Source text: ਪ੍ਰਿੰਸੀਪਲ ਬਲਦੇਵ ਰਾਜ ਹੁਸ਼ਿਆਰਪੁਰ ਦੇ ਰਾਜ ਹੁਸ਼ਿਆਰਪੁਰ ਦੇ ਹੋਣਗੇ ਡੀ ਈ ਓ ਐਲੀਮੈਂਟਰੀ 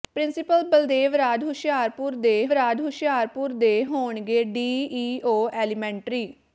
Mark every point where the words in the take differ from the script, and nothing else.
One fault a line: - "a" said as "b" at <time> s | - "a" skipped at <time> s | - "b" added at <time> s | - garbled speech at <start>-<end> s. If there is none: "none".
none